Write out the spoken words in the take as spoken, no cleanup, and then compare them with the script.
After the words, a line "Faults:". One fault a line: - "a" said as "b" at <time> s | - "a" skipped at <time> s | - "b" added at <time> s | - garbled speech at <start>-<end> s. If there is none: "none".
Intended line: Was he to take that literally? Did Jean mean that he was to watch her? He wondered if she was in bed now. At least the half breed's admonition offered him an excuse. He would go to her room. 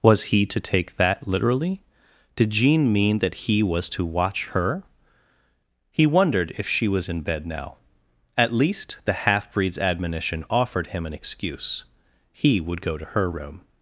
Was he to take that literally? Did Jean mean that he was to watch her? He wondered if she was in bed now. At least the half breed's admonition offered him an excuse. He would go to her room.
Faults:
none